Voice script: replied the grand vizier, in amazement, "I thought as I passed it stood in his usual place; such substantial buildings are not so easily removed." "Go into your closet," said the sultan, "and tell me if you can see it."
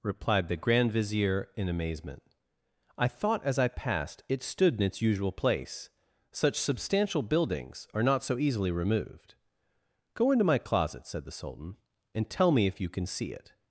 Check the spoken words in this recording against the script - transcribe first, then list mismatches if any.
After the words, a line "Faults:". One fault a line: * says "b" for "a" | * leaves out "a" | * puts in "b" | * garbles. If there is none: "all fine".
replied the grand vizier, in amazement, "I thought as I passed it stood in its usual place; such substantial buildings are not so easily removed." "Go into my closet," said the sultan, "and tell me if you can see it."
Faults:
* says "its" for "his"
* says "my" for "your"